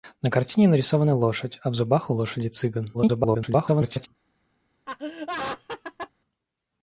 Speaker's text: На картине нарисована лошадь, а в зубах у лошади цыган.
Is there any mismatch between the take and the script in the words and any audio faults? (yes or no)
yes